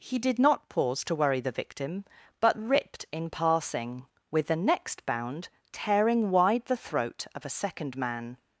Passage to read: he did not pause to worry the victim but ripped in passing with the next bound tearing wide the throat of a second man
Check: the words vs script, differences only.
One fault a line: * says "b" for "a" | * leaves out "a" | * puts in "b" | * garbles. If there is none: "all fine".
all fine